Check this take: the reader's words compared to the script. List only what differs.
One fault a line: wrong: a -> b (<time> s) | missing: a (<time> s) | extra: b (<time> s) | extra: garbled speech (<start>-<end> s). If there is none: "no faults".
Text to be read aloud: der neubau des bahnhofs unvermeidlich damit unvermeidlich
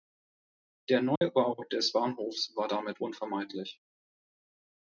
wrong: unvermeidlich -> war (2.6 s)